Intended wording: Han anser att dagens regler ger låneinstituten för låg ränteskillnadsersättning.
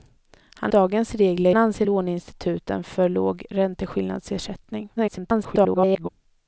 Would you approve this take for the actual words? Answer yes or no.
no